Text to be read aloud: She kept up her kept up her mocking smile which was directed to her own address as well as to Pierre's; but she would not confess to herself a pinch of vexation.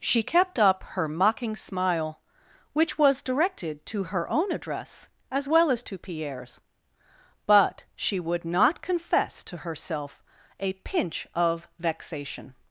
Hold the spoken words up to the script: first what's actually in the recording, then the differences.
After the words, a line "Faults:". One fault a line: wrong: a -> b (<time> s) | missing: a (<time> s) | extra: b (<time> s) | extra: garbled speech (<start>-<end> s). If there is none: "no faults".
She kept up her mocking smile which was directed to her own address as well as to Pierre's; but she would not confess to herself a pinch of vexation.
Faults:
missing: kept up her (1.1 s)